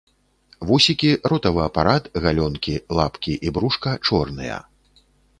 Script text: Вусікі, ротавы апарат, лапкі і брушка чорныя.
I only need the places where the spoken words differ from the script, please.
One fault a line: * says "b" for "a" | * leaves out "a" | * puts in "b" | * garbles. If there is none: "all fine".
* puts in "галёнкі"